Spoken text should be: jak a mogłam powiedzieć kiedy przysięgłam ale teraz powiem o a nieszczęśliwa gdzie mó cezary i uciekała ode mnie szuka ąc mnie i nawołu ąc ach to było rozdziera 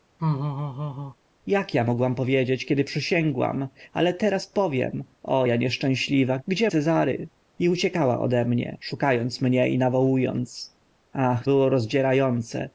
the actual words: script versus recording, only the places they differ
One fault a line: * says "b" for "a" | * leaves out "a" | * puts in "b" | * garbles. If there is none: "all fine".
* leaves out "mó"
* leaves out "to"